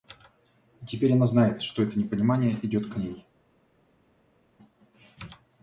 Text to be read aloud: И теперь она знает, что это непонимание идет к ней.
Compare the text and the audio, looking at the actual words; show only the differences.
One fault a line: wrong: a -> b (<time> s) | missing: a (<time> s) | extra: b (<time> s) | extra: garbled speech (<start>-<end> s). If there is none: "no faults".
no faults